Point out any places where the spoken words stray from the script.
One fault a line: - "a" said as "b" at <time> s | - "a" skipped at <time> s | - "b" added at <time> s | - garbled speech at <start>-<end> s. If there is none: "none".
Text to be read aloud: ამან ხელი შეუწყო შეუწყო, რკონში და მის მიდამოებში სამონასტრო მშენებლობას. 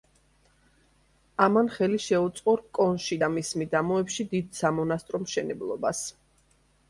- "შეუწყო" skipped at 2.5 s
- "დიდ" added at 4.4 s